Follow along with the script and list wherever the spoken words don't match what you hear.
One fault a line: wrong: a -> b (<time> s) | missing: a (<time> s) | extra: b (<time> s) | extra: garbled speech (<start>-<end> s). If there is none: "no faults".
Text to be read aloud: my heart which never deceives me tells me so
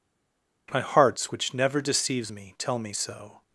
wrong: heart -> hearts (0.8 s)
wrong: tells -> tell (2.6 s)